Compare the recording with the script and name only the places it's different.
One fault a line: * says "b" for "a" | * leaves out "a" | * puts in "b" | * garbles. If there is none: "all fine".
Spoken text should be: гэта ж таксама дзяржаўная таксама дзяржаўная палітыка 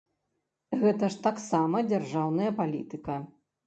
* leaves out "таксама дзяржаўная"